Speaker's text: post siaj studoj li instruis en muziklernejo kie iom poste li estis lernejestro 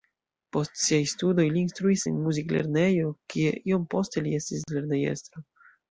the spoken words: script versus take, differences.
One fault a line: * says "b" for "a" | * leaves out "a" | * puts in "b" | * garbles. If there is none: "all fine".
all fine